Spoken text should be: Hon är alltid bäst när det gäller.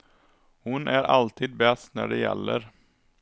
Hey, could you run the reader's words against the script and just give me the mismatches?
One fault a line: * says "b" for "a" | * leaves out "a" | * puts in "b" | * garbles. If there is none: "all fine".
all fine